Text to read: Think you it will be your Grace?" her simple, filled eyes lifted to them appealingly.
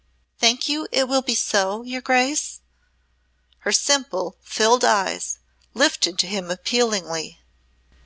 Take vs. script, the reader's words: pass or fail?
fail